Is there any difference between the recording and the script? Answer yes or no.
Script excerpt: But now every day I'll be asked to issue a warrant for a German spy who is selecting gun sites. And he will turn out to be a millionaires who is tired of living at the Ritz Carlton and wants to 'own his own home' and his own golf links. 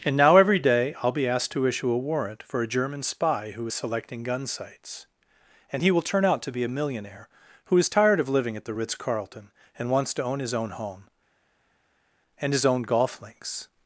yes